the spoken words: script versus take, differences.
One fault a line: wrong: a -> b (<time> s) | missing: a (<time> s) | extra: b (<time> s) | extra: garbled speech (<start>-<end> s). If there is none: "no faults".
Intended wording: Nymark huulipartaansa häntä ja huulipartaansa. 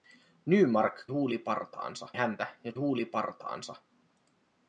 no faults